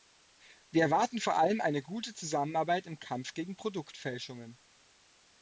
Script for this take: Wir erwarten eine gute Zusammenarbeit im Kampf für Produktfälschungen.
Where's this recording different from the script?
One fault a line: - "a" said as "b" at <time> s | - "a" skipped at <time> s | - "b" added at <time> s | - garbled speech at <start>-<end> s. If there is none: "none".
- "vor allem" added at 1.2 s
- "für" said as "gegen" at 3.4 s